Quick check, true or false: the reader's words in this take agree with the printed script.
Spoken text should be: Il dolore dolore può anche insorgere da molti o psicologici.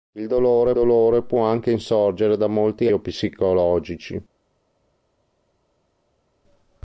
true